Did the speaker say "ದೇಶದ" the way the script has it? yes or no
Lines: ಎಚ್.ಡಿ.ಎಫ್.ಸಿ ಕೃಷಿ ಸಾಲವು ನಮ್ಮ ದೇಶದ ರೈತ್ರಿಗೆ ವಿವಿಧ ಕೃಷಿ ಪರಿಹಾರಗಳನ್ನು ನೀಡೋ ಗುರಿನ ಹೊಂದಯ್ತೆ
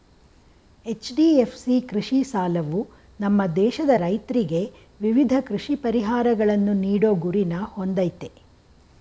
yes